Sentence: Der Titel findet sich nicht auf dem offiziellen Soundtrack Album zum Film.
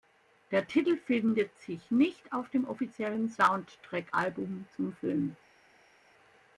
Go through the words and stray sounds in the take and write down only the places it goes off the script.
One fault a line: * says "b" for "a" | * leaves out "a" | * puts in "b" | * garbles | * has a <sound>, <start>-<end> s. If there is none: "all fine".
all fine